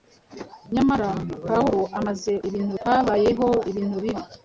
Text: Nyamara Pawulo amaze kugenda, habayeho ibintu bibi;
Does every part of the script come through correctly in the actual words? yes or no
no